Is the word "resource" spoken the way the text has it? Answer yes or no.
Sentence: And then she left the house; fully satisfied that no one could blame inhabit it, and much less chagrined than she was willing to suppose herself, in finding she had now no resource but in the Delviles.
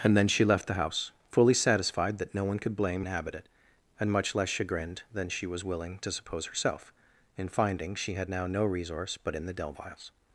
yes